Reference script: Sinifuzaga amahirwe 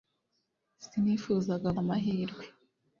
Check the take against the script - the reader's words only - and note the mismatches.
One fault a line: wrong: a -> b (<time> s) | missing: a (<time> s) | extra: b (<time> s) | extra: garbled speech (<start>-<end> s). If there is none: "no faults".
no faults